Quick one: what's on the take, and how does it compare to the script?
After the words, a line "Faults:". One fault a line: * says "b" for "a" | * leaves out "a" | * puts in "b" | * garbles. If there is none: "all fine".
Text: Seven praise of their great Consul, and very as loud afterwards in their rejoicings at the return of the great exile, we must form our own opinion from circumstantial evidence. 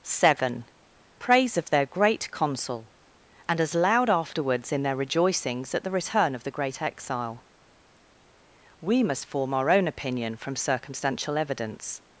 Seven praise of their great Consul, and as loud afterwards in their rejoicings at the return of the great exile, we must form our own opinion from circumstantial evidence.
Faults:
* leaves out "very"